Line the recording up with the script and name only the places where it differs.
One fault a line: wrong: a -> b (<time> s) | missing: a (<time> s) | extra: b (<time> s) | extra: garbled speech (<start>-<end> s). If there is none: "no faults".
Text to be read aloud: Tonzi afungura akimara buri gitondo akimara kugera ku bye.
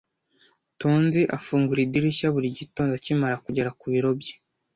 wrong: akimara -> idirishya (1.9 s)
extra: biro (3.9 s)